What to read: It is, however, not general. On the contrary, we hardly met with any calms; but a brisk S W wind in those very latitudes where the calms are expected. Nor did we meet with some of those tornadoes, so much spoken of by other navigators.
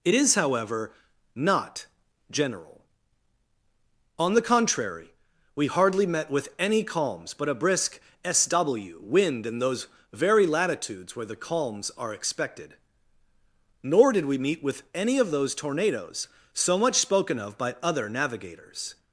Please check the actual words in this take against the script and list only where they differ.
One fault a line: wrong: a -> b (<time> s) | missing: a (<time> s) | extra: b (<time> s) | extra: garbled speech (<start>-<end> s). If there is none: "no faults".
wrong: some -> any (14.9 s)